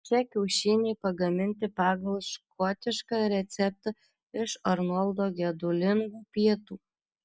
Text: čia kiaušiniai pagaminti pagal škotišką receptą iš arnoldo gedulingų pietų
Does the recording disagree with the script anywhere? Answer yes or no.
no